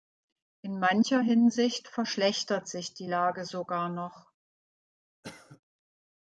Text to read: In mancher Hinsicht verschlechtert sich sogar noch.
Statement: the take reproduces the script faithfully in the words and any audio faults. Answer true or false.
false